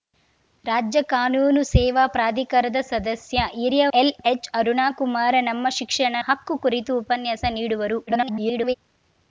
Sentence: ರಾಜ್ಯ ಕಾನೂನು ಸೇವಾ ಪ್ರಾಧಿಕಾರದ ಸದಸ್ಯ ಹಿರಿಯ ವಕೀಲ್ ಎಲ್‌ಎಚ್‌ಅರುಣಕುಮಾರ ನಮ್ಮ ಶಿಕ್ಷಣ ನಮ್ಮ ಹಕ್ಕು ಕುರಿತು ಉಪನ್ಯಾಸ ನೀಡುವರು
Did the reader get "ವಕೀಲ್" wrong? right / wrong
wrong